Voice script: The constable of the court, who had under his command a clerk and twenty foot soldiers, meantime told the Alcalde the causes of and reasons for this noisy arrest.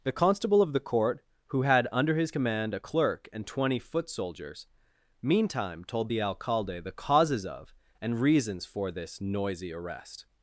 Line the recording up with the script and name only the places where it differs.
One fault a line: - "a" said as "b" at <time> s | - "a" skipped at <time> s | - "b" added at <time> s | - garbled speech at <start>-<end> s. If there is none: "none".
none